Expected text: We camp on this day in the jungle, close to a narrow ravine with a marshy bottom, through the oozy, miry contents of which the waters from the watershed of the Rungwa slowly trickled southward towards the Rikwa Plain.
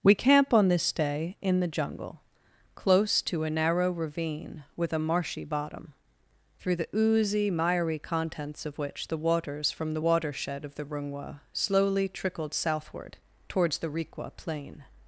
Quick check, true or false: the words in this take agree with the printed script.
true